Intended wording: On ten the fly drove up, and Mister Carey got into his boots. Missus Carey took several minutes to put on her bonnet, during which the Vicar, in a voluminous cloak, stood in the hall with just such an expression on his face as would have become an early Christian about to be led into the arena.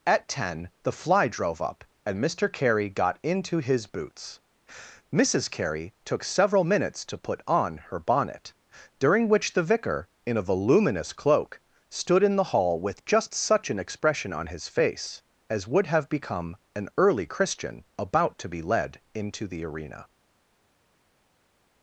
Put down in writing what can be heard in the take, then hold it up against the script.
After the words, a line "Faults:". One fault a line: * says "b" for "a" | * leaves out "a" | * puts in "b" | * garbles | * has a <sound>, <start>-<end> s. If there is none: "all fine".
At ten the fly drove up, and Mister Carey got into his boots. Missus Carey took several minutes to put on her bonnet, during which the Vicar, in a voluminous cloak, stood in the hall with just such an expression on his face as would have become an early Christian about to be led into the arena.
Faults:
* says "At" for "On"